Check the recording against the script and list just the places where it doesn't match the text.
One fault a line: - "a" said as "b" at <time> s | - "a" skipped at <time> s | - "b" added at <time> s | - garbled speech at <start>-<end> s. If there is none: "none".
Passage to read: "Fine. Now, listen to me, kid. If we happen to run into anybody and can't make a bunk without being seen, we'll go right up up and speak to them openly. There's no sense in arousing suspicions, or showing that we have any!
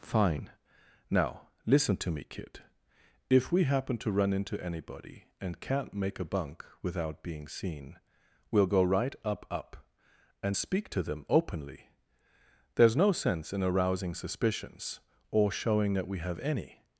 none